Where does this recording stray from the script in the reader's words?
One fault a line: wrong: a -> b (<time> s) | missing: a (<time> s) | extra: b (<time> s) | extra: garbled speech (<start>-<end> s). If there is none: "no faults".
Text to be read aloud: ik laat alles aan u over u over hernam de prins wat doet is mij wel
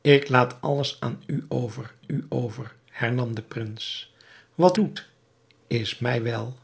no faults